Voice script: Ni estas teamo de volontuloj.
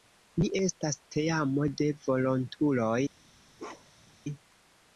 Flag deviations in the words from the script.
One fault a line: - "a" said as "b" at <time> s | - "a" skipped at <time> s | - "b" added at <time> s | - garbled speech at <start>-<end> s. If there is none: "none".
none